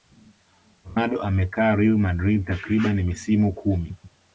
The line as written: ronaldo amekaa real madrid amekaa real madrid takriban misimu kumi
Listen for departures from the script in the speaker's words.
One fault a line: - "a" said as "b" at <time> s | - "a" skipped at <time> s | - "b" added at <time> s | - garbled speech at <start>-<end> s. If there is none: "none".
- "amekaa real madrid" skipped at 2.5 s